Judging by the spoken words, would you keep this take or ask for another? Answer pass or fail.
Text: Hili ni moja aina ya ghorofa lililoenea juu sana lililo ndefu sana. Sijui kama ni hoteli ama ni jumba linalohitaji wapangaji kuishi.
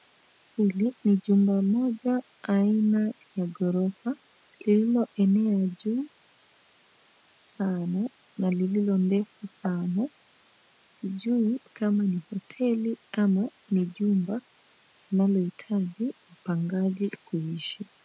fail